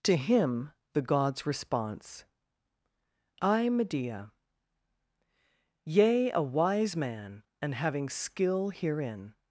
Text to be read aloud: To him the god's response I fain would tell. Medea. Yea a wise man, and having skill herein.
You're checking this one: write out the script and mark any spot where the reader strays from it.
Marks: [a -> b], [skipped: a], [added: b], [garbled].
To him the god's response I [skipped: fain would tell.] Medea. Yea a wise man, and having skill herein.